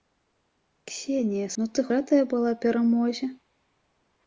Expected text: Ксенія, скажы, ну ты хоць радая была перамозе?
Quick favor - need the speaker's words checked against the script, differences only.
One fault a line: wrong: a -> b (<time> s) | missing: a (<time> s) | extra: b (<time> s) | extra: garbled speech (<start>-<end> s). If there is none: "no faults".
missing: скажы (1.5 s)
missing: хоць (1.9 s)